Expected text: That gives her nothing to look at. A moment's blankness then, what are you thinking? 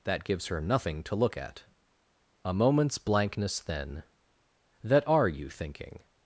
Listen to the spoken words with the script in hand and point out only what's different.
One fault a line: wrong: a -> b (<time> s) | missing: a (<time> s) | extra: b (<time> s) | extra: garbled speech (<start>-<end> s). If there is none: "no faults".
wrong: what -> that (4.8 s)